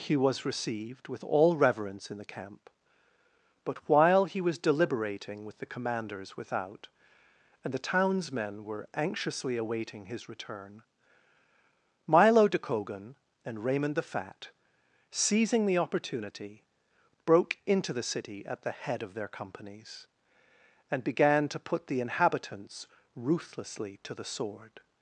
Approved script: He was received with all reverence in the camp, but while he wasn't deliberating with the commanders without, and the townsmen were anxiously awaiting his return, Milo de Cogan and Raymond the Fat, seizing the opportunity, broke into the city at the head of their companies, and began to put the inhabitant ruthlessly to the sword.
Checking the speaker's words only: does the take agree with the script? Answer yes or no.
no